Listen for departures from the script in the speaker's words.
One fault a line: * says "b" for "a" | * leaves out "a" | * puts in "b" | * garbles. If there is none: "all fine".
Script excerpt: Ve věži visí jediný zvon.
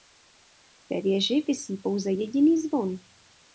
* puts in "pouze"